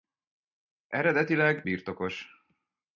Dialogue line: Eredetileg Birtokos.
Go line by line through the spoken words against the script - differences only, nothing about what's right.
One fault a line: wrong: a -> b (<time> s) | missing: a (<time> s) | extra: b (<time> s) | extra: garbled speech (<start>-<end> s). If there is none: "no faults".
no faults